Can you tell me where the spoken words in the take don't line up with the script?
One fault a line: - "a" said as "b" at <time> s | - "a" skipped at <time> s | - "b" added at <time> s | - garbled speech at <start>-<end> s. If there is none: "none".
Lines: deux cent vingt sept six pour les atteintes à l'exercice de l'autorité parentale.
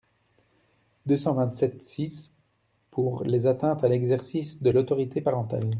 none